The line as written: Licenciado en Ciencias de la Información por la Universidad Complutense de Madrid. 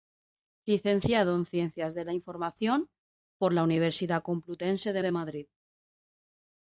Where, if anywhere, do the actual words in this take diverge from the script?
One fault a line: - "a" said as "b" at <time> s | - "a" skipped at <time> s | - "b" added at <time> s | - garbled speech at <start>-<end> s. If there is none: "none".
- "de" added at 5.0 s